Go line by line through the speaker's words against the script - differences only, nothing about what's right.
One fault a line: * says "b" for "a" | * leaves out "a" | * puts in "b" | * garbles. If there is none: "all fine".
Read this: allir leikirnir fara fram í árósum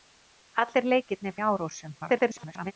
* leaves out "fara fram"
* garbles